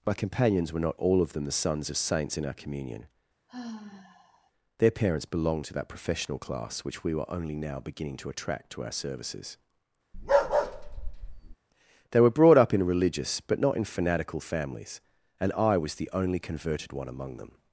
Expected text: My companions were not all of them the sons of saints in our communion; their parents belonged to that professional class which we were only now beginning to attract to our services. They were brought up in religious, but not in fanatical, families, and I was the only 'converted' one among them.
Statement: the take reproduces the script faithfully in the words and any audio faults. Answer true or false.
false